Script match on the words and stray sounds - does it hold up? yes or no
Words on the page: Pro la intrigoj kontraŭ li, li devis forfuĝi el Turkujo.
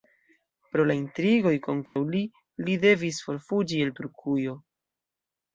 no